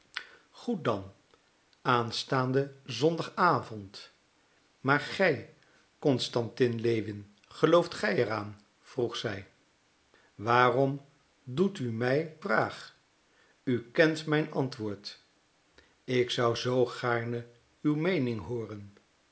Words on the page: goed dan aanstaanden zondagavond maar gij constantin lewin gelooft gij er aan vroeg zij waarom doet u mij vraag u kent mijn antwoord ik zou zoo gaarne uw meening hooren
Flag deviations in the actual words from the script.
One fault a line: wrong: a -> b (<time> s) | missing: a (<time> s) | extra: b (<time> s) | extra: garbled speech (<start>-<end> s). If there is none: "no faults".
no faults